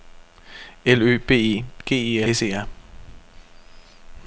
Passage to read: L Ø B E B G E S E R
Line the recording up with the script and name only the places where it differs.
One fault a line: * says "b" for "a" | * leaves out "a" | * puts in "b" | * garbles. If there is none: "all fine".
all fine